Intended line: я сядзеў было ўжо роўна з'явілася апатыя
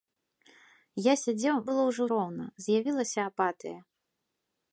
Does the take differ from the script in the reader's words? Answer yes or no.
no